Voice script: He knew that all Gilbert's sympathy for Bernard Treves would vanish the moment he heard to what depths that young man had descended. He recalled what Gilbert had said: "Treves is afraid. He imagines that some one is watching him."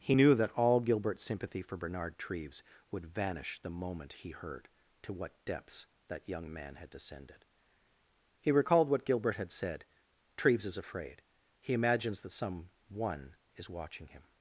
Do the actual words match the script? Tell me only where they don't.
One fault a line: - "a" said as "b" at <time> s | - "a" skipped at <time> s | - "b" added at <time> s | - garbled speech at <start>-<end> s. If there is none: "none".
none